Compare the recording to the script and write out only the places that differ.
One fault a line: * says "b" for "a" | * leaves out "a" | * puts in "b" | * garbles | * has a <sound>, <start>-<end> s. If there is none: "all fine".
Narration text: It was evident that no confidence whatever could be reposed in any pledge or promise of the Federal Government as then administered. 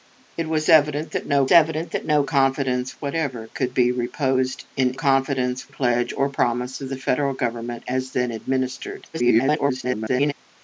* puts in "evident that no"
* says "confidence" for "any"
* garbles